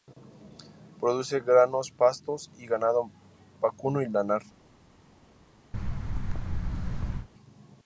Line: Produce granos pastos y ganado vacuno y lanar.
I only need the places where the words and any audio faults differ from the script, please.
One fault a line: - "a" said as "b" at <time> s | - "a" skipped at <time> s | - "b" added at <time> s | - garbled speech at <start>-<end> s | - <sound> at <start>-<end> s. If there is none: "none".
- thud at 5.7-7.3 s